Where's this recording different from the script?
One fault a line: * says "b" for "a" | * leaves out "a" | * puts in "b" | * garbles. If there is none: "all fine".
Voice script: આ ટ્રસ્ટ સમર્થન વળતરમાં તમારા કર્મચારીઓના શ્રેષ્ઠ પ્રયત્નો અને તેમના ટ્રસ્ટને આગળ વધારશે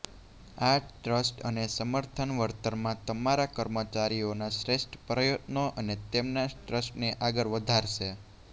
* puts in "અને"